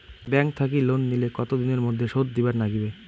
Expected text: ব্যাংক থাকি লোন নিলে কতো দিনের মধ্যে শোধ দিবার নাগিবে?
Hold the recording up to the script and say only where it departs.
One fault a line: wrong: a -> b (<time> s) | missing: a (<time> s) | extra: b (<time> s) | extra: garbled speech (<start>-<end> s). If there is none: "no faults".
no faults